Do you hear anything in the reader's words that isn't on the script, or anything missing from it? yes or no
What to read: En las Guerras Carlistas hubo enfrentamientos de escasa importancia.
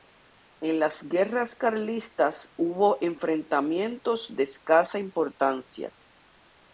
no